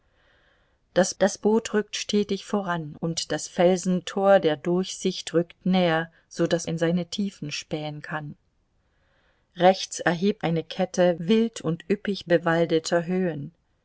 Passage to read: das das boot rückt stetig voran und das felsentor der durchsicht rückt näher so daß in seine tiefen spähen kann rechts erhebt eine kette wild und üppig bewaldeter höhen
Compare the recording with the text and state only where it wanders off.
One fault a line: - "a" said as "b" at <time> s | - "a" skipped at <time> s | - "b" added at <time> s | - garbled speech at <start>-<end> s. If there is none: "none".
none